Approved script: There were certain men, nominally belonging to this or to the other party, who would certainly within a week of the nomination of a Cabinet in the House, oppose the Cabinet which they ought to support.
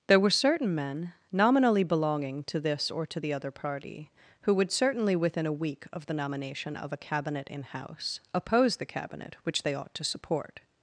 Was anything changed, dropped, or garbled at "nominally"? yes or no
no